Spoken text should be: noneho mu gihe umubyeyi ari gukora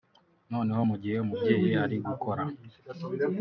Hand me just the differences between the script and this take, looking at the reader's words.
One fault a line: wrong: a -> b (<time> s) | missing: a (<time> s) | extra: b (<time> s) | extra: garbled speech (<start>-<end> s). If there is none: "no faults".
no faults